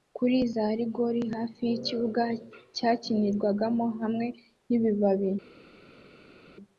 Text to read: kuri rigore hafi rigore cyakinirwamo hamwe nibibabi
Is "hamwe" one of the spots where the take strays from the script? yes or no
no